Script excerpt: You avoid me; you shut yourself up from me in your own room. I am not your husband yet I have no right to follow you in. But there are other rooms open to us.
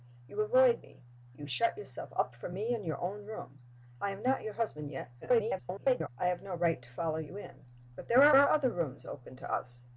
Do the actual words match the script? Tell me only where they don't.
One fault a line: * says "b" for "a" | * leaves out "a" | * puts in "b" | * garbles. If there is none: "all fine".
* garbles
* puts in "are"